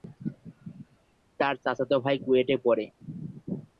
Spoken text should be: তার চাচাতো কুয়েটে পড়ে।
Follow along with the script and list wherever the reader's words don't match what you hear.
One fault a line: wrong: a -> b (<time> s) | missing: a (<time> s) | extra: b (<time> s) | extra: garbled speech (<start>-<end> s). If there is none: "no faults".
extra: ভাই (2.0 s)